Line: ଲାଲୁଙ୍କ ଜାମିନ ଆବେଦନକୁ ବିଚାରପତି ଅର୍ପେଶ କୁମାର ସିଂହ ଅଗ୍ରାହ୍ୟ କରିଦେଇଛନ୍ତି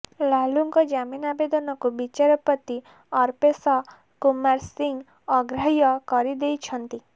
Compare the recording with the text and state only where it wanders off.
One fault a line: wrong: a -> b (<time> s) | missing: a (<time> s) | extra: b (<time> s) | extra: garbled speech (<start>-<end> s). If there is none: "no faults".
no faults